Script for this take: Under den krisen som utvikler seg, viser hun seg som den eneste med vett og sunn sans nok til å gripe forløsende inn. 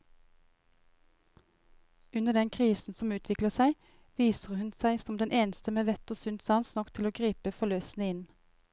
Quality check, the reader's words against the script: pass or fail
pass